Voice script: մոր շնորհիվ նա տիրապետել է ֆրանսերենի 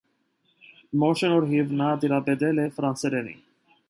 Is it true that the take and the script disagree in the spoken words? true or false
false